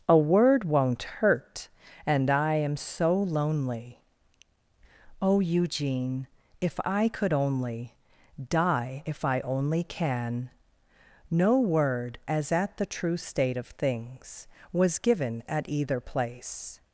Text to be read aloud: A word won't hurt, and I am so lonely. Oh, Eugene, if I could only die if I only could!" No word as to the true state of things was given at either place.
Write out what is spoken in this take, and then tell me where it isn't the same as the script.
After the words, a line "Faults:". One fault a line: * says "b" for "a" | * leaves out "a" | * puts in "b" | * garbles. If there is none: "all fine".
A word won't hurt, and I am so lonely. Oh, Eugene, if I could only die if I only can!" No word as at the true state of things was given at either place.
Faults:
* says "can" for "could"
* says "at" for "to"